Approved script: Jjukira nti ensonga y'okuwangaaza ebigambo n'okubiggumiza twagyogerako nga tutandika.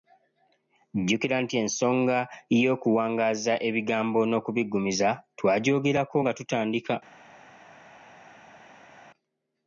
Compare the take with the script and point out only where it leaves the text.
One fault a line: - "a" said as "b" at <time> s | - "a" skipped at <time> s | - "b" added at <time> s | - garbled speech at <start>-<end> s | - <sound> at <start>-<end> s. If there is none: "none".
none